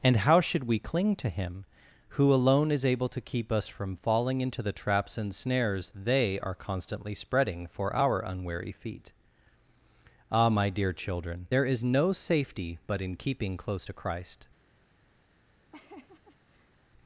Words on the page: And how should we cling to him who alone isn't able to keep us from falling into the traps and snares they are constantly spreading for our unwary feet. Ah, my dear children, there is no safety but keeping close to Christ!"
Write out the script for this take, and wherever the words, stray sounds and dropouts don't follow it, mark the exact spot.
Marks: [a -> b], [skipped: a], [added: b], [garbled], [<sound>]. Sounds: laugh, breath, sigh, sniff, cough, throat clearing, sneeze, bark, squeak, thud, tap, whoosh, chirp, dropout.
And how should we cling to him who alone [isn't -> is] able to keep us from falling into the traps and snares they are constantly spreading for our unwary feet. Ah, my dear children, there is no safety but [added: in] keeping close to Christ!" [laugh]